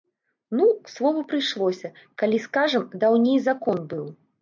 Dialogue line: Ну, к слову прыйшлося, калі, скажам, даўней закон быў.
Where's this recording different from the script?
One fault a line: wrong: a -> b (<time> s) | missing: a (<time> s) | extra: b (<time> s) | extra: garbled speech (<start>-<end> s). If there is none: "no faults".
no faults